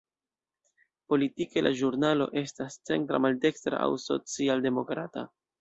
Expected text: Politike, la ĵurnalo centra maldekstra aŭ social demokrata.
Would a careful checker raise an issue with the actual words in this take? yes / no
yes